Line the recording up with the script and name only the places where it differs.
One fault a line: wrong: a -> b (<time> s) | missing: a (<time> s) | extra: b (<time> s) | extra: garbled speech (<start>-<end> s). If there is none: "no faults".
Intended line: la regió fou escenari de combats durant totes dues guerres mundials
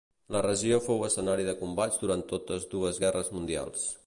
no faults